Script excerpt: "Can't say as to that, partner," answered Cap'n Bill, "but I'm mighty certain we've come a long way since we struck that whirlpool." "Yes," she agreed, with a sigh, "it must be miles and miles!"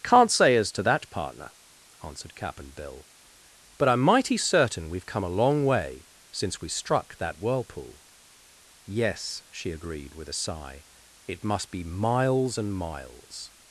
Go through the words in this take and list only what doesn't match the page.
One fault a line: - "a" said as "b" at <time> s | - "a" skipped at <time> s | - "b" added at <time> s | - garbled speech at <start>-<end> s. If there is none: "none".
none